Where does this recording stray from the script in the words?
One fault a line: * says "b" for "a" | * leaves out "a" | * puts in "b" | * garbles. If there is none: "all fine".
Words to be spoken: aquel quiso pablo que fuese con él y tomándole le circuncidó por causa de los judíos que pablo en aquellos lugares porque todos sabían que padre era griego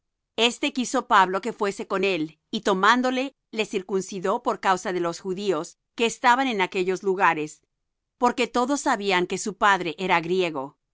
* says "este" for "aquel"
* says "estaban" for "pablo"
* puts in "su"